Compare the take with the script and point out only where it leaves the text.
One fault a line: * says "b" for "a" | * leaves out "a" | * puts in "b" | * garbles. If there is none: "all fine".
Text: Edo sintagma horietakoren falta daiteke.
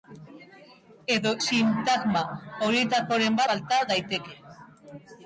all fine